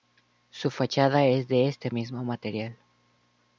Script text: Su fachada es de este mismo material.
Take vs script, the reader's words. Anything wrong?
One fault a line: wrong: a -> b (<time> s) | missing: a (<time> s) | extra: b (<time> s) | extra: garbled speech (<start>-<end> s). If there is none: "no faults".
no faults